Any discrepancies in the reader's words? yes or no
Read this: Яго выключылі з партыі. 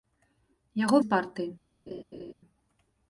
yes